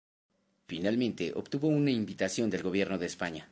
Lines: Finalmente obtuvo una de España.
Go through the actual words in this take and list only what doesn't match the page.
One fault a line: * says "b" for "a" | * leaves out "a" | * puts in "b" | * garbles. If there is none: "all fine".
* puts in "invitación del Gobierno"